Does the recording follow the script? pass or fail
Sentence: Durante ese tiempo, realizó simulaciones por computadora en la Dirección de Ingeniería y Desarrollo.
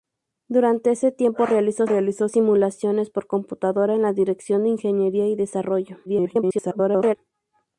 fail